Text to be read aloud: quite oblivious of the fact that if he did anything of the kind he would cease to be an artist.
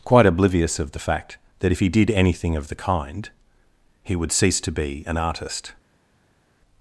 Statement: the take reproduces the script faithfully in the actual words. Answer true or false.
true